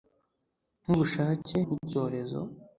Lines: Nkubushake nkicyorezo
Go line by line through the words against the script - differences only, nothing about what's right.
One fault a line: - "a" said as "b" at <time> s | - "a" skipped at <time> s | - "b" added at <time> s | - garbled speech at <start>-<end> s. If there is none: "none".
none